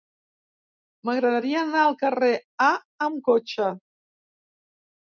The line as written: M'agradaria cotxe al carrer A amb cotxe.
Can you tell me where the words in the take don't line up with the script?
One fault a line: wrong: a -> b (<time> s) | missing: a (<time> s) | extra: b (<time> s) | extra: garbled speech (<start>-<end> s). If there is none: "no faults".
wrong: cotxe -> anar (1.6 s)